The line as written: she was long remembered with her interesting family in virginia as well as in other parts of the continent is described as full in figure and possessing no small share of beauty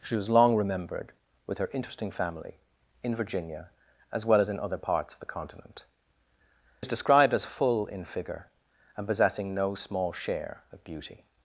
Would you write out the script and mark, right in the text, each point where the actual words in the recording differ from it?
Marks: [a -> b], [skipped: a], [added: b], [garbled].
she was long remembered with her interesting family in virginia as well as in other parts of the continent is described as full in figure and possessing no small share of beauty